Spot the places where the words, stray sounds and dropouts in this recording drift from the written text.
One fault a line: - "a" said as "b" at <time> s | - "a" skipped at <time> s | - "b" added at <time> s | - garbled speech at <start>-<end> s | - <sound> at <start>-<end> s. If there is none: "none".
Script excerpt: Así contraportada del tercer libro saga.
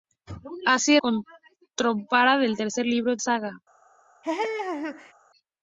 - laugh at 4.2-5.1 s